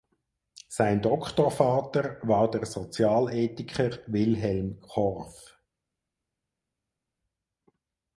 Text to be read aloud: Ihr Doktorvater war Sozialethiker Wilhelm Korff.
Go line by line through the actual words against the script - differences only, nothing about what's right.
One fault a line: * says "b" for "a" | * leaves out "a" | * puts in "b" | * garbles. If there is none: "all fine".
* says "Sein" for "Ihr"
* puts in "der"